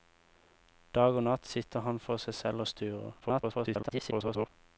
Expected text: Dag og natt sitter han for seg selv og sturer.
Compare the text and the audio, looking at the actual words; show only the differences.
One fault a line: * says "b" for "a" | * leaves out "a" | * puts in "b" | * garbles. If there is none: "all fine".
* garbles